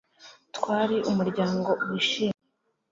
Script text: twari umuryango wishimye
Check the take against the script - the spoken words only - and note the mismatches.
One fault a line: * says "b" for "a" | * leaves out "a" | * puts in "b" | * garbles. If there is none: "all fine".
all fine